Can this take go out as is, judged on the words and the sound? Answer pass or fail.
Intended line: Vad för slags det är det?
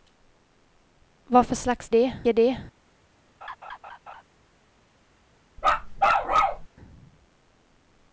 fail